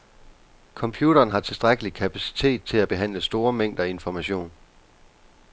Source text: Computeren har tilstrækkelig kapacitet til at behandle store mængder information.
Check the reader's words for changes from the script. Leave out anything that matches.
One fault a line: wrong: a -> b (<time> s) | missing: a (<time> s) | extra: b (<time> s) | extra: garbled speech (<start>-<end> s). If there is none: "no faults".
no faults